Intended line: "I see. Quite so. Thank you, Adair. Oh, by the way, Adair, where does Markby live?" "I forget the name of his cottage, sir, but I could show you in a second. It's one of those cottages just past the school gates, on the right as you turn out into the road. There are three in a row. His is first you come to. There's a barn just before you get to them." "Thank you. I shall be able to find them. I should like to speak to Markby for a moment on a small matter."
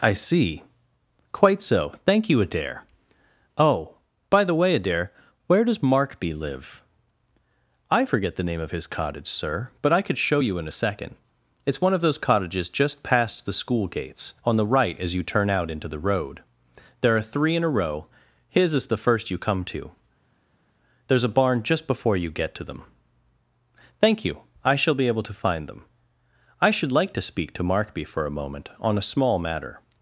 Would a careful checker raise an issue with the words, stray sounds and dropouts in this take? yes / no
yes